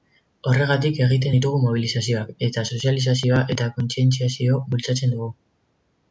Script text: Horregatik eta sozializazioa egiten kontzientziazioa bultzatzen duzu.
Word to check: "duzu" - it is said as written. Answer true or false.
false